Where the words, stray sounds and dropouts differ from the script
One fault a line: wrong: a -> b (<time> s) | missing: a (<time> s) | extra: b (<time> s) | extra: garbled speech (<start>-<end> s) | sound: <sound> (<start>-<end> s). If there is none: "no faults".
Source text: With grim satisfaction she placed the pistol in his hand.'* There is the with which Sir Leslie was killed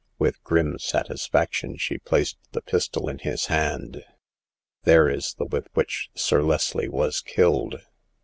no faults